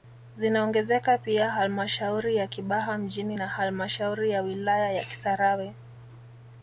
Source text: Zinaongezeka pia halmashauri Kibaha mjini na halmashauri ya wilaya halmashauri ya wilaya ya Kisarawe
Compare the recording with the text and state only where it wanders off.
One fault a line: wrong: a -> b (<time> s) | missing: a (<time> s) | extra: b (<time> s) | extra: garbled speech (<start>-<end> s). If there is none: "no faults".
extra: ya (2.4 s)
missing: halmashauri ya wilaya (4.9 s)